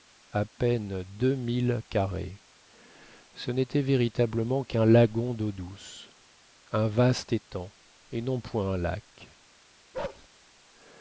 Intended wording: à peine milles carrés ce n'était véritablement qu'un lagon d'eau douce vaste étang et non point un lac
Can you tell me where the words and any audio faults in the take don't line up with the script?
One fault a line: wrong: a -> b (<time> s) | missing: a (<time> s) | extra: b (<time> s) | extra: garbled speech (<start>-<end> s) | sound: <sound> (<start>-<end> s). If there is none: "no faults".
extra: deux (1.0 s)
extra: un (6.7 s)
sound: bark (9.9-10.3 s)